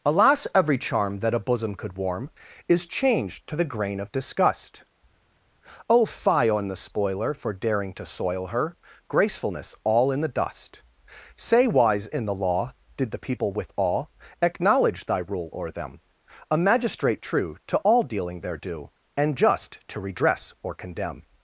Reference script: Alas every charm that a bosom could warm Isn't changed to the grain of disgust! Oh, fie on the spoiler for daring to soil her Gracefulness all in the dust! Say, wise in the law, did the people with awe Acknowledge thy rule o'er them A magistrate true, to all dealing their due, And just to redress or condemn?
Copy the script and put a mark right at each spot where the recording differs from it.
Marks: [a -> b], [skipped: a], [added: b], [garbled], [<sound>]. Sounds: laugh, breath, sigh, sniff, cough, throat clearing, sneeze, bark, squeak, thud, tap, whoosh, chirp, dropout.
Alas every charm that a bosom could warm [Isn't -> Is] changed to the grain of disgust! Oh, fie on the spoiler for daring to soil her Gracefulness all in the dust! Say, wise in the law, did the people with awe Acknowledge thy rule o'er them A magistrate true, to all dealing their due, And just to redress or condemn?